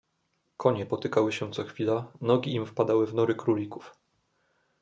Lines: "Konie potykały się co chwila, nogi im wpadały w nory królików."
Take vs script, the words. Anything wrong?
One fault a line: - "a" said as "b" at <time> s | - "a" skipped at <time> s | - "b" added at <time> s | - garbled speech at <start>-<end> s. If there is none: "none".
none